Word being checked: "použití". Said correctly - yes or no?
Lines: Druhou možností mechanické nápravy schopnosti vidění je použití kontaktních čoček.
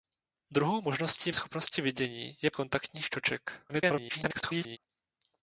no